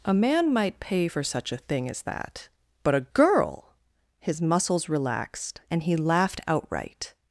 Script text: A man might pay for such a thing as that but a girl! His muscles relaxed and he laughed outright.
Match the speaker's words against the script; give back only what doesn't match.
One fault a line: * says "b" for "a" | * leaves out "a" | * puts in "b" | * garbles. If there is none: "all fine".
all fine